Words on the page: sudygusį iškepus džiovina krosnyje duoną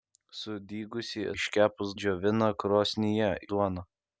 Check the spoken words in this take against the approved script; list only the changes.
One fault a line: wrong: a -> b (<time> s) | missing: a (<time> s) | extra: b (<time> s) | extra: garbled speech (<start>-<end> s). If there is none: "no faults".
no faults